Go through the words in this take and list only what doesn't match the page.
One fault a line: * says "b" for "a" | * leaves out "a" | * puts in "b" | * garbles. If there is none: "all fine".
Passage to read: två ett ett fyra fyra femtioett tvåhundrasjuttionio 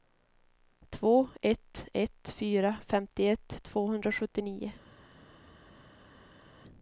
* leaves out "fyra"